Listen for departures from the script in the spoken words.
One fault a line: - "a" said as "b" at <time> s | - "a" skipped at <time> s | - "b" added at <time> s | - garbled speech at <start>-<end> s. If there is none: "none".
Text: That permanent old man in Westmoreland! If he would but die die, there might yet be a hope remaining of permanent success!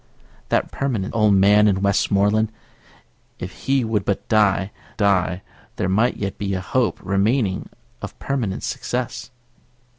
none